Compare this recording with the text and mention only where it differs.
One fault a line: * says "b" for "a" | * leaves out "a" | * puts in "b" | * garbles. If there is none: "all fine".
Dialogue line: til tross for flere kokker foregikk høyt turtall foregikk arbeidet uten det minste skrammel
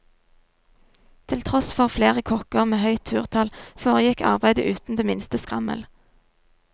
* says "med" for "foregikk"